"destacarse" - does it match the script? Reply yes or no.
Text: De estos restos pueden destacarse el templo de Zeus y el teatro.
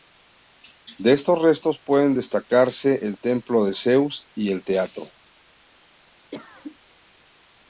yes